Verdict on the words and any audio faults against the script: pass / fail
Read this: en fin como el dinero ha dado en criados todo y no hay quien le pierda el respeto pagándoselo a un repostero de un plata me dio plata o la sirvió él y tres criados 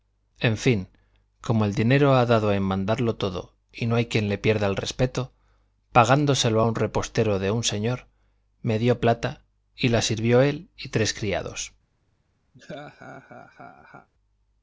fail